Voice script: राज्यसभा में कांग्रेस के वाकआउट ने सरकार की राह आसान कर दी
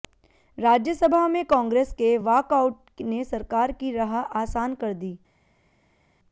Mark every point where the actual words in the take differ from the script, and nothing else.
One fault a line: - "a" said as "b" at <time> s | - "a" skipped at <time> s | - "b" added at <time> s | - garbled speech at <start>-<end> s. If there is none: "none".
none